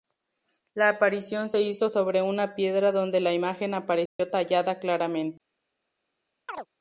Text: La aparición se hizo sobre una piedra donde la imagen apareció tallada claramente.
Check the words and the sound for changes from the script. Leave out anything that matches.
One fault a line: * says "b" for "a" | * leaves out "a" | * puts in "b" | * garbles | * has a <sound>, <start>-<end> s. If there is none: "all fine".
* has a dropout, 4.1-4.2 s
* has a chirp, 6.5-6.7 s